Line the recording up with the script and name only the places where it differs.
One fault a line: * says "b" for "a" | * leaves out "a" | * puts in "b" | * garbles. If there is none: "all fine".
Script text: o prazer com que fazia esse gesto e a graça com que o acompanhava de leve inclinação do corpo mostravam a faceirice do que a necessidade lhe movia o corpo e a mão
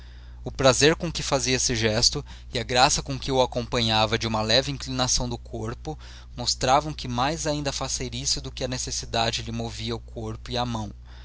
* puts in "uma"
* puts in "que mais ainda"